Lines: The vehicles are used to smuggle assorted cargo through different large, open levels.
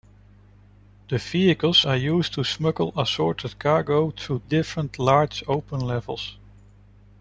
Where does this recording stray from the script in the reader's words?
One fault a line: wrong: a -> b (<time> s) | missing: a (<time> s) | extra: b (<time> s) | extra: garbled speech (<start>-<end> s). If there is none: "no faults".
no faults